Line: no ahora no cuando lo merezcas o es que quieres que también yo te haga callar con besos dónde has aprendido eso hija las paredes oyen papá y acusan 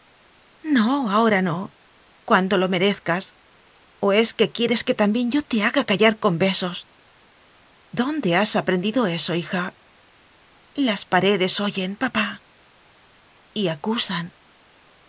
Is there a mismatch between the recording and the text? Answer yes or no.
no